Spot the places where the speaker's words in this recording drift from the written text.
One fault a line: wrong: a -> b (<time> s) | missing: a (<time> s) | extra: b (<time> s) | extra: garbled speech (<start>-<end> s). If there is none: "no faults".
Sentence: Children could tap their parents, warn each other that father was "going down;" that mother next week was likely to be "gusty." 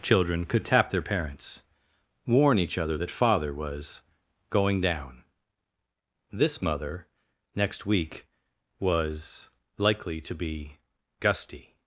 wrong: that -> this (6.3 s)